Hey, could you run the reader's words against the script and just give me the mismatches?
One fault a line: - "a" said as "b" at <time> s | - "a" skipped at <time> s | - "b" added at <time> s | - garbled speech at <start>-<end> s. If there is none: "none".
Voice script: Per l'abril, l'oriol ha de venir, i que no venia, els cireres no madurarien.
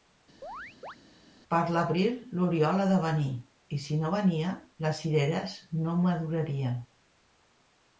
- "que" said as "si" at 3.8 s
- "els" said as "les" at 4.9 s